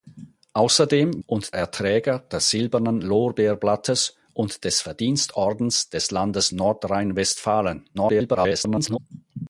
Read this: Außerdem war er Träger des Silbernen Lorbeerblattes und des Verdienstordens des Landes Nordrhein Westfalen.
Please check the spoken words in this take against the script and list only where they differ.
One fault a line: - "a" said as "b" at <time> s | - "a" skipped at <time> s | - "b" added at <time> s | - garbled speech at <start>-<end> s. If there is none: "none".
- "war" said as "und" at 1.3 s
- garbled speech at 7.9-9.0 s